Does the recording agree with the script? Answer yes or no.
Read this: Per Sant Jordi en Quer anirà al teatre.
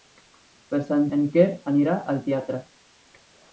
no